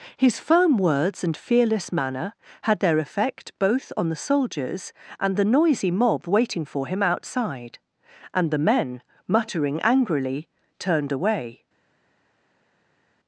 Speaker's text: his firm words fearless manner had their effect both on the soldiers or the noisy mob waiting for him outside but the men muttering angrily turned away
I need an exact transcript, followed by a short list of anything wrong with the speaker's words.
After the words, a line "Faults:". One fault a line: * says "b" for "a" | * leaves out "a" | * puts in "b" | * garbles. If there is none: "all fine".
his firm words and fearless manner had their effect both on the soldiers and the noisy mob waiting for him outside and the men muttering angrily turned away
Faults:
* puts in "and"
* says "and" for "or"
* says "and" for "but"